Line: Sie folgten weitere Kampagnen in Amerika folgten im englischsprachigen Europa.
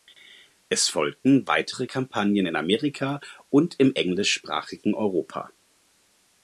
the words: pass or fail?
fail